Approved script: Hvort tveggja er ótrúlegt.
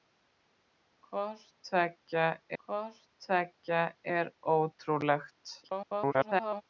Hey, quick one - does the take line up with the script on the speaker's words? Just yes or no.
no